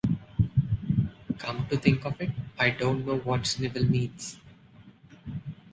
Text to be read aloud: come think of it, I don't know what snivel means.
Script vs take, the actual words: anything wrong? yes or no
yes